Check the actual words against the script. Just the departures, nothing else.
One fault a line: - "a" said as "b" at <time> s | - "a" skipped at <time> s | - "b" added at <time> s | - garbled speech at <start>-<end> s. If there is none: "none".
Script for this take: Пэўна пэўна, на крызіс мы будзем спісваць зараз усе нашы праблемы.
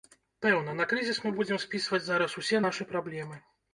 - "пэўна" skipped at 0.7 s